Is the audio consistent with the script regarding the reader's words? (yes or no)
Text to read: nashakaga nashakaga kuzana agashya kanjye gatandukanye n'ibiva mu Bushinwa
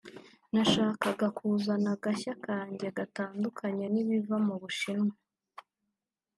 no